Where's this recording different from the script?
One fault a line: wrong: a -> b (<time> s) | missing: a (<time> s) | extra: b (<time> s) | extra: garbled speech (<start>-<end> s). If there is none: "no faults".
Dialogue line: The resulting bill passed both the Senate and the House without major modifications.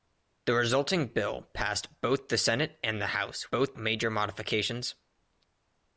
wrong: without -> both (3.5 s)